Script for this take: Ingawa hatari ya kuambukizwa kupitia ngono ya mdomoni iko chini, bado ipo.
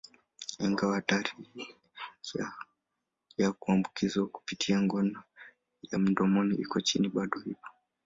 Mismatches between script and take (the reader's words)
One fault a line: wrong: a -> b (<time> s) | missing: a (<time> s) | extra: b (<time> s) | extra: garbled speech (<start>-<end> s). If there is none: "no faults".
no faults